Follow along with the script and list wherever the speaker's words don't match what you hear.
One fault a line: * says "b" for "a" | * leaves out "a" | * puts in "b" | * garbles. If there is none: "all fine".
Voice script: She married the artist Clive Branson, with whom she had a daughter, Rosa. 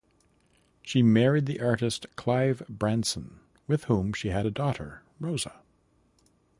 all fine